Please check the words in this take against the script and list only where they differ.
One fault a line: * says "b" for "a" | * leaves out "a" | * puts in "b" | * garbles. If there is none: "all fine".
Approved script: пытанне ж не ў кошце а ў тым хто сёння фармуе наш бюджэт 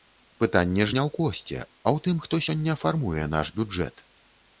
all fine